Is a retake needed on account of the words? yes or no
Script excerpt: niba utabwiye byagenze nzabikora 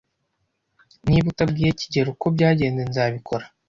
yes